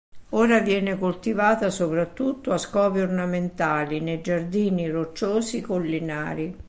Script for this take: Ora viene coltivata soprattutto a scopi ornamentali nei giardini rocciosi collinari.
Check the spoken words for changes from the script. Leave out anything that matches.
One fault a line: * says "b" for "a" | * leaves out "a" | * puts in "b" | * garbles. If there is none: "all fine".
all fine